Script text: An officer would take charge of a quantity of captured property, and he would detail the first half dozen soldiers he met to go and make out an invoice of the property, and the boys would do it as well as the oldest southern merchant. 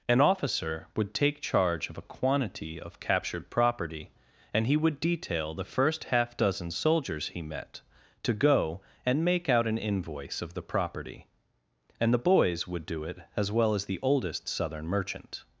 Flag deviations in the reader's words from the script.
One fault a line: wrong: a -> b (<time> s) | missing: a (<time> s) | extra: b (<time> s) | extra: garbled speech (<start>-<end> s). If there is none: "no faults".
no faults